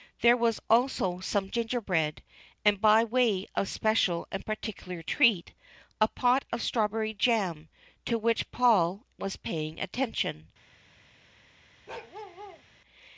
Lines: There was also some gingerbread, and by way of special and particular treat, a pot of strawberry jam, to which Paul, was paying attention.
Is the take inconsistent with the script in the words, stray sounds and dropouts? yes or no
yes